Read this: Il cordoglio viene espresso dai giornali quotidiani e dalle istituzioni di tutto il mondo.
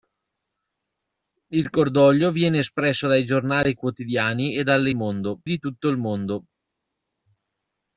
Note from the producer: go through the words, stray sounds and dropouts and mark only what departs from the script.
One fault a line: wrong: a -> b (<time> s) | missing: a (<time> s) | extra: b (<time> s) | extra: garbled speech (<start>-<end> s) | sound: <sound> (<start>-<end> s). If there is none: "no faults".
wrong: istituzioni -> mondo (4.9 s)